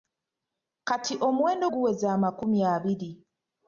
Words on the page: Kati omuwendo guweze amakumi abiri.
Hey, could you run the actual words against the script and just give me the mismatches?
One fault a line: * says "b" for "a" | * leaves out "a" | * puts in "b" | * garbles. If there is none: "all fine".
all fine